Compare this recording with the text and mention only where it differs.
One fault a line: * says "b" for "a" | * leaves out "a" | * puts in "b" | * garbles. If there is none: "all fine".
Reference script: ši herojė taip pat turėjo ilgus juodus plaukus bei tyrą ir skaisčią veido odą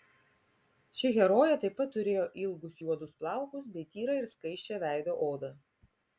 all fine